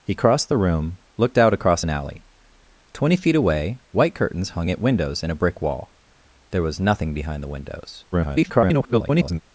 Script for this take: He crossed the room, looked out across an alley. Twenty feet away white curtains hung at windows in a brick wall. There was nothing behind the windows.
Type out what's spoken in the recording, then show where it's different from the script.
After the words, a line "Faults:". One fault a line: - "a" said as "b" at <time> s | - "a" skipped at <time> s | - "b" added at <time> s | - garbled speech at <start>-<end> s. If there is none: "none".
He crossed the room, looked out across an alley. Twenty feet away white curtains hung at windows in a brick wall. There was nothing behind the windows. [garbled]
Faults:
- garbled speech at 8.1-9.4 s